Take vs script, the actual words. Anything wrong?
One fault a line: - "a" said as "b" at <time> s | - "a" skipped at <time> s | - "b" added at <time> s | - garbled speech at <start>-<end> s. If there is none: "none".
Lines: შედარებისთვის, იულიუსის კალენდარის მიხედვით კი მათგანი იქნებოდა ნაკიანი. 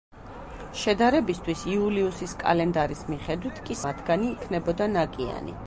none